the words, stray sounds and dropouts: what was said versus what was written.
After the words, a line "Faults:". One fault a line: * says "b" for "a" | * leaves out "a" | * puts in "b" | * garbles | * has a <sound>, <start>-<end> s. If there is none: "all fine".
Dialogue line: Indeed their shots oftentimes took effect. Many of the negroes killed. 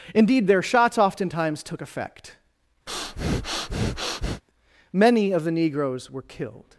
Indeed their shots oftentimes took effect. Many of the negroes were killed.
Faults:
* has a breath, 2.9-4.4 s
* puts in "were"